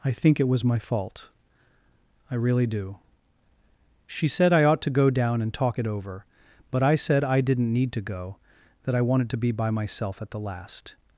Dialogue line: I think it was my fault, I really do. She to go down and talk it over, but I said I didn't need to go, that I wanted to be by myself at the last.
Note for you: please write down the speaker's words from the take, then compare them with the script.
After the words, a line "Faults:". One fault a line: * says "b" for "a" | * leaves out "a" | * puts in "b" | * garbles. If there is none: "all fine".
I think it was my fault, I really do. She said I ought to go down and talk it over, but I said I didn't need to go, that I wanted to be by myself at the last.
Faults:
* puts in "said I ought"